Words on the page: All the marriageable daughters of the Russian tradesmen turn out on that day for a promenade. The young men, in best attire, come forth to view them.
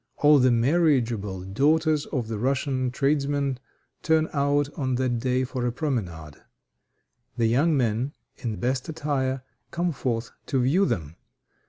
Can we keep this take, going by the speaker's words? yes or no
yes